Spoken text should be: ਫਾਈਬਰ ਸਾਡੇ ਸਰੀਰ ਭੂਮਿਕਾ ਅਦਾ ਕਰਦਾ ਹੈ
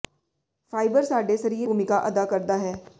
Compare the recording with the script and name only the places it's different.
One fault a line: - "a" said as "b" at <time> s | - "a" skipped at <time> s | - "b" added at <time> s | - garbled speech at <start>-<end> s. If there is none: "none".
none